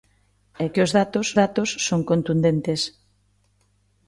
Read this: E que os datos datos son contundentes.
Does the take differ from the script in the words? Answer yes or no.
no